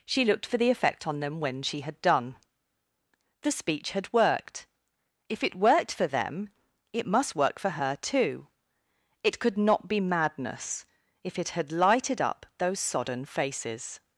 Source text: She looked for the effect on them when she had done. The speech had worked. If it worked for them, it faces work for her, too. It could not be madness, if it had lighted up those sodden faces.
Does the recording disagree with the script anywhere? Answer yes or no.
yes